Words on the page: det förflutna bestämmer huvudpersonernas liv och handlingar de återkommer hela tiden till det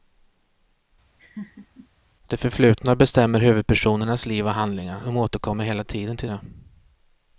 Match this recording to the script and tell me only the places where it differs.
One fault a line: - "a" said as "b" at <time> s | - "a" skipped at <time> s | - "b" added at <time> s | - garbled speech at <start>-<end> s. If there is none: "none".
none